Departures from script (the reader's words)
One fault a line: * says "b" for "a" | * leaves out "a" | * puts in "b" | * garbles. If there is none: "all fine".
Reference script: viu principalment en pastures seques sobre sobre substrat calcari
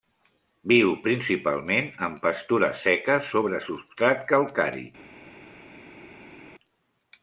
* leaves out "sobre"